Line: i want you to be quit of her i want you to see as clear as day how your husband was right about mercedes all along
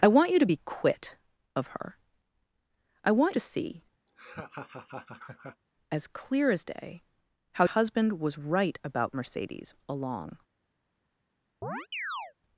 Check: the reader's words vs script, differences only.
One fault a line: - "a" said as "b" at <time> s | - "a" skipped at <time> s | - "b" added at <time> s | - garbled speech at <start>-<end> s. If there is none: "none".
- "you" skipped at 3.3 s
- "your" skipped at 7.6 s
- "all" skipped at 9.7 s